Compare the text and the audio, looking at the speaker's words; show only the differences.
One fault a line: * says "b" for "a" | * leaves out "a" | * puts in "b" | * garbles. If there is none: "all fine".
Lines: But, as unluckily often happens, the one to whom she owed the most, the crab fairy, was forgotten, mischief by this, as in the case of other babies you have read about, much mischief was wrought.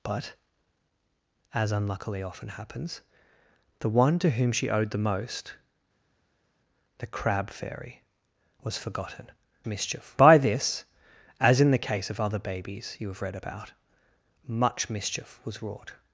all fine